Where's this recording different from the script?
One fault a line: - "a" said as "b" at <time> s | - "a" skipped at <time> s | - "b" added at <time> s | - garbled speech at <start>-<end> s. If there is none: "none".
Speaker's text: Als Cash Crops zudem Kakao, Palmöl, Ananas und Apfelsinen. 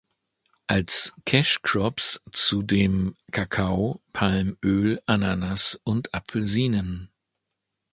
none